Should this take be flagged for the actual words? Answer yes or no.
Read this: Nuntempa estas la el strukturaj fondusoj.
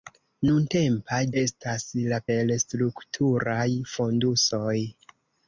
no